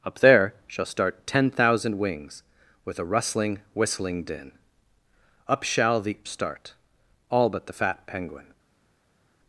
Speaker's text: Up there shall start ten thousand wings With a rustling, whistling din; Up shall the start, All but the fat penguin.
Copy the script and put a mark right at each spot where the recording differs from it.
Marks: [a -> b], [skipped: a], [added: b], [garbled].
Up there shall start ten thousand wings With a rustling, whistling din; Up shall the start, All but the fat penguin.